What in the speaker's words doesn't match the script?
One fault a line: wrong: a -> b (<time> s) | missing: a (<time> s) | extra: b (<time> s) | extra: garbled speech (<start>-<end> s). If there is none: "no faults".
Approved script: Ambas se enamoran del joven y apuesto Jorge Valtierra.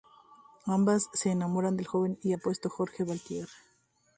no faults